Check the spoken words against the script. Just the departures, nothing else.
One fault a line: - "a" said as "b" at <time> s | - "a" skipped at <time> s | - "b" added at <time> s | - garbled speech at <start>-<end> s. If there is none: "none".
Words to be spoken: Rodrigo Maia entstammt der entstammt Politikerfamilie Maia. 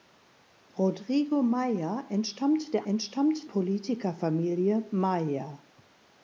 none